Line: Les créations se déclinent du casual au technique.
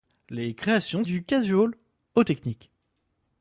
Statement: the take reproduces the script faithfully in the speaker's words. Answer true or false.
false